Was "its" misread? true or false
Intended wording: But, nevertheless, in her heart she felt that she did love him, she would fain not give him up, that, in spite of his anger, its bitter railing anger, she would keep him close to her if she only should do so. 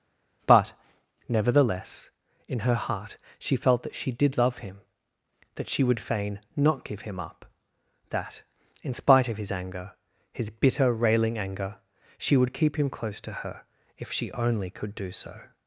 true